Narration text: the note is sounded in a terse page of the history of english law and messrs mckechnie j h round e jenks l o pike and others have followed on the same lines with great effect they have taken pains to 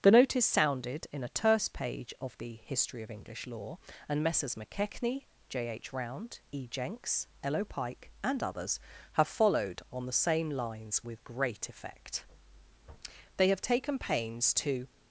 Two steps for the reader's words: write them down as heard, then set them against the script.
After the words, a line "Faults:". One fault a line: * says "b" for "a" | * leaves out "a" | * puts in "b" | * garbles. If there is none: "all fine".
the note is sounded in a terse page of the history of english law and messrs mckechnie j h round e jenks l o pike and others have followed on the same lines with great effect they have taken pains to
Faults:
all fine